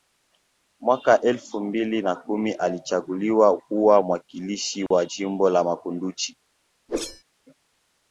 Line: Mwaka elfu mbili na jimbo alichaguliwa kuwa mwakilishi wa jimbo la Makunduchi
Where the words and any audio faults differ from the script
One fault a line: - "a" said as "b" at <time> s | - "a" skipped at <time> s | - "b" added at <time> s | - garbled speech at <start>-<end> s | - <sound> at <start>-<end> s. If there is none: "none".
- "jimbo" said as "kumi" at 2.1 s
- dropout at 4.9-4.9 s
- whoosh at 6.9-7.2 s